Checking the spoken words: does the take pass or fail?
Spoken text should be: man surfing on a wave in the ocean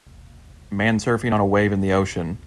pass